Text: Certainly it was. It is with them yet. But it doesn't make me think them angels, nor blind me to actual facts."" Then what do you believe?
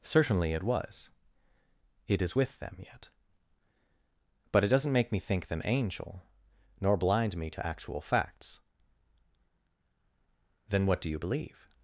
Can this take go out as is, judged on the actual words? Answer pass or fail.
fail